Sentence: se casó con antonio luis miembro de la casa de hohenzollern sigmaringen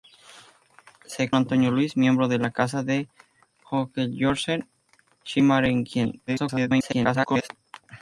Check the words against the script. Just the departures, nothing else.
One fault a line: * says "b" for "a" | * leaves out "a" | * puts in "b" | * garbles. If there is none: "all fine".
* leaves out "casó con"
* garbles